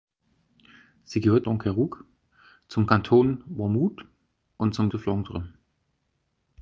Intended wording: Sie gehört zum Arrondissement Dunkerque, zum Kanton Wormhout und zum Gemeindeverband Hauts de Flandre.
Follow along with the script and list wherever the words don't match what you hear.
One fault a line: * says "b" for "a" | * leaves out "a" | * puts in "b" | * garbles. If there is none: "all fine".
* leaves out "zum Arrondissement"
* leaves out "Gemeindeverband Hauts"